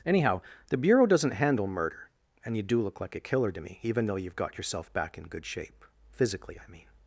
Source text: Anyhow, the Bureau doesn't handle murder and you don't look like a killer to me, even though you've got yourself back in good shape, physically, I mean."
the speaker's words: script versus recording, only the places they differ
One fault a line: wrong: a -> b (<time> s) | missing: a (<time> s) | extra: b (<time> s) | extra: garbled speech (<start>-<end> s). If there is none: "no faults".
wrong: don't -> do (2.6 s)